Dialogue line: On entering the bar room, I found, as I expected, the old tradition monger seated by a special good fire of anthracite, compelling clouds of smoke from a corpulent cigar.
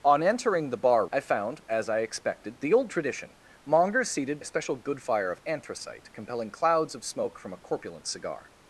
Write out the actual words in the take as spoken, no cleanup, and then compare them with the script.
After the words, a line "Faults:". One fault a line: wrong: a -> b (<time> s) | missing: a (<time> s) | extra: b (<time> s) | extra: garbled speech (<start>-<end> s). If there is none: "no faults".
On entering the bar I found, as I expected, the old tradition monger seated a special good fire of anthracite, compelling clouds of smoke from a corpulent cigar.
Faults:
missing: room (1.1 s)
missing: by (4.4 s)